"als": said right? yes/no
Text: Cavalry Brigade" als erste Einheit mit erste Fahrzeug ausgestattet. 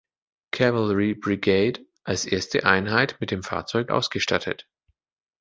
yes